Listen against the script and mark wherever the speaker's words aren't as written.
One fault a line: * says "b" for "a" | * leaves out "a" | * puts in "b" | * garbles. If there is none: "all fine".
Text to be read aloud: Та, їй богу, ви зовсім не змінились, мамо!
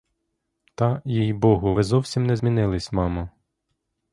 all fine